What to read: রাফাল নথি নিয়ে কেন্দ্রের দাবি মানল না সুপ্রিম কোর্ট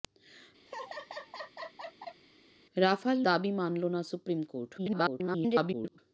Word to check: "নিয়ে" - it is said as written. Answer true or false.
false